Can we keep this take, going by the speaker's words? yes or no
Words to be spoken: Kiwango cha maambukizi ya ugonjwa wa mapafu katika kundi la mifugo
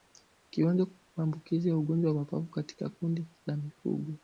no